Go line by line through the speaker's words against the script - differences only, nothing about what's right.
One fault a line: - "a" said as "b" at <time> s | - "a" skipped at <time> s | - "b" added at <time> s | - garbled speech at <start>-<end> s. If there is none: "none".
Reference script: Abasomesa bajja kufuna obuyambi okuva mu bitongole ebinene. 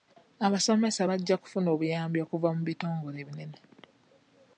none